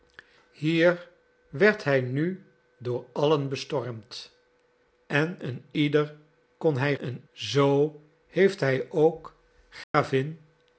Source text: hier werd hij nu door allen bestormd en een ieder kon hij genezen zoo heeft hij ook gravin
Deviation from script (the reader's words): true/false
true